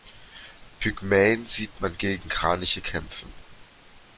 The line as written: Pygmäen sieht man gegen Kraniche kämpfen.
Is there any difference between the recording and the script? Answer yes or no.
no